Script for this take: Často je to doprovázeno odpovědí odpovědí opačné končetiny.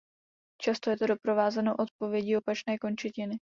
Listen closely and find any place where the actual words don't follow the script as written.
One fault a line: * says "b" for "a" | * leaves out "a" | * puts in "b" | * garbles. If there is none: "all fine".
* leaves out "odpovědí"